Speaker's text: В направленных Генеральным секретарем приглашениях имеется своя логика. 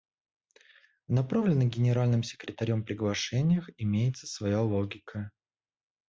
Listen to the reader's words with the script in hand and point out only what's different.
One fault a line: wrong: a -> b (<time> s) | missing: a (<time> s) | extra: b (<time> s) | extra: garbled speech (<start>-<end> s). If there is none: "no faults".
no faults